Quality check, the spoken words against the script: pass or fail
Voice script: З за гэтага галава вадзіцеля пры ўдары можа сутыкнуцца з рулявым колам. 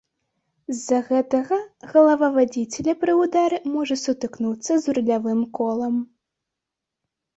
pass